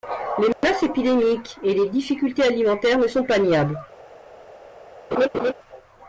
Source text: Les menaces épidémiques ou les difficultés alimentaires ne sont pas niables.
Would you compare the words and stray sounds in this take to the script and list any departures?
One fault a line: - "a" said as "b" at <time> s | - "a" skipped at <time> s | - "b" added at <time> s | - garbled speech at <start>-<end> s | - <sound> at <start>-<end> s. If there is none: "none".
- dropout at 0.5-0.6 s
- "ou" said as "et" at 1.6 s
- laugh at 5.1-5.5 s